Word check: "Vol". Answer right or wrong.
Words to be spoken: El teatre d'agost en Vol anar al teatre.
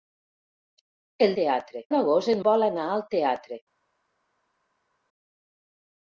right